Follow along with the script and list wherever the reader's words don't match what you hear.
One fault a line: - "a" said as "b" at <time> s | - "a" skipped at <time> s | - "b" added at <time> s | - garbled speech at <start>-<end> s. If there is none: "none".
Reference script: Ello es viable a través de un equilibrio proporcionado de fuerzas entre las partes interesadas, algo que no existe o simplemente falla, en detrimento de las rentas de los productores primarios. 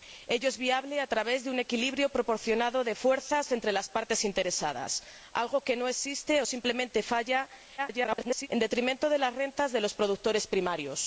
- garbled speech at 7.8-8.5 s